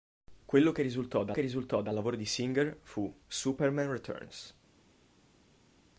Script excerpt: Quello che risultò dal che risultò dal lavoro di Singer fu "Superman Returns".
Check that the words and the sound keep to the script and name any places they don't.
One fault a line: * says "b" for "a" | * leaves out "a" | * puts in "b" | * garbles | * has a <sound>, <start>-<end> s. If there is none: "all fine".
all fine